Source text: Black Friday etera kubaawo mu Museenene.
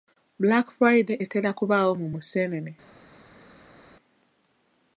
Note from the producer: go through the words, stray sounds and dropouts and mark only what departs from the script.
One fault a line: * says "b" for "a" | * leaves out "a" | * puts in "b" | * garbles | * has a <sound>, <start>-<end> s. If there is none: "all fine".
all fine